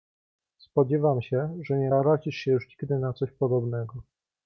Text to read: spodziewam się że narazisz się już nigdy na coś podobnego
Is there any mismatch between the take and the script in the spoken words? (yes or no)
yes